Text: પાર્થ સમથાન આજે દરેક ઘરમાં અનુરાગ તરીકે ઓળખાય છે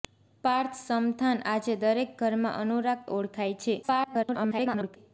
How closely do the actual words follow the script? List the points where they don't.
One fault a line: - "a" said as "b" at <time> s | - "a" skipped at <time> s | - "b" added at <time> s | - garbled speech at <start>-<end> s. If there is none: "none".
- "તરીકે" skipped at 3.1 s
- garbled speech at 3.8-5.0 s